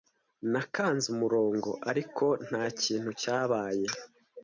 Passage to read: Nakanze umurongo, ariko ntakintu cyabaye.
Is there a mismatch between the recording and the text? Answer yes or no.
no